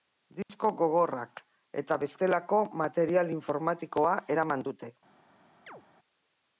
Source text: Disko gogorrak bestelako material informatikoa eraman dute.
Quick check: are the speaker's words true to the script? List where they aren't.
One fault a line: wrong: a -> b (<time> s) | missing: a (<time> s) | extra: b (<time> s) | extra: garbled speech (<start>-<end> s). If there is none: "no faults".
extra: eta (1.8 s)